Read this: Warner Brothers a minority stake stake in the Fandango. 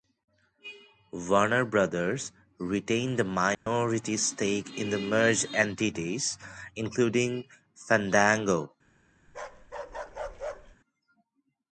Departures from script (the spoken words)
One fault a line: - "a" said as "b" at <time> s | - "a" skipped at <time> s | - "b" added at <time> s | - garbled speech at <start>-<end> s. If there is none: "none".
- "retained" added at 2.6 s
- "stake" skipped at 4.8 s
- "merged entities including" added at 5.0 s